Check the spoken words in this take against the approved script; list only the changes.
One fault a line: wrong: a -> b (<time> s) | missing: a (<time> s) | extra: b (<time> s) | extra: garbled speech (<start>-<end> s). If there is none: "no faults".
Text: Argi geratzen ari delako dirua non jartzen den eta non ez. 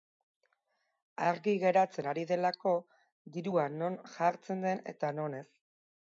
no faults